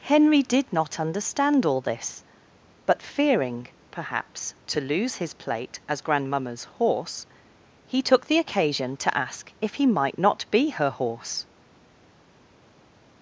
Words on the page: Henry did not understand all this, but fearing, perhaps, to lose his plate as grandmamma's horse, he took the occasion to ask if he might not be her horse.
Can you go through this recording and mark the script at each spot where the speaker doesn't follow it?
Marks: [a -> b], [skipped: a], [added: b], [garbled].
Henry did not understand all this, but fearing, perhaps, to lose his plate as grandmamma's horse, he took the occasion to ask if he might not be her horse.